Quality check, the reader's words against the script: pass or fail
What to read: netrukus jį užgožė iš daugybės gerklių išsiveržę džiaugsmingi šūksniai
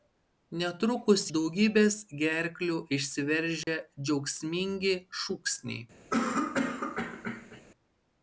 fail